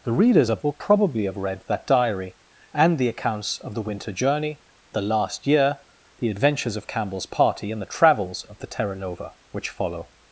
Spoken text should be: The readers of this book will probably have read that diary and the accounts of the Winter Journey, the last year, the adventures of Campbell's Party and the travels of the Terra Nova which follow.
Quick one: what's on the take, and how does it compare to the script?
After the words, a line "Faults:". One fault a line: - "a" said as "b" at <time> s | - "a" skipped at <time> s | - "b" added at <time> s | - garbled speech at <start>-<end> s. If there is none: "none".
The readers of will probably have read that diary and the accounts of the Winter Journey, the last year, the adventures of Campbell's Party and the travels of the Terra Nova which follow.
Faults:
- "this book" skipped at 0.6 s